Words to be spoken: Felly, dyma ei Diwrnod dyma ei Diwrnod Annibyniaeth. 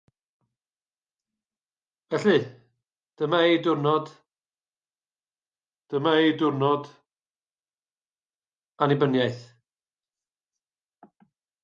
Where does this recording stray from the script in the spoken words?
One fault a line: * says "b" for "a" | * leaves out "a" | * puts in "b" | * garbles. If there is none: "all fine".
all fine